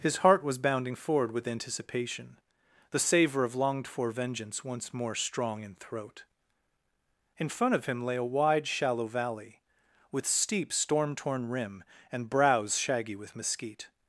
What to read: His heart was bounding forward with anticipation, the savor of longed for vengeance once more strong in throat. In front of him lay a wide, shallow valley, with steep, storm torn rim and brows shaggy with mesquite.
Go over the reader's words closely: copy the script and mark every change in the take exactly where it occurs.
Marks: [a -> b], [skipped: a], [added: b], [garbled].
His heart was bounding forward with anticipation, the savor of longed for vengeance once more strong in throat. In front of him lay a wide, shallow valley, with steep, storm torn rim and brows shaggy with mesquite.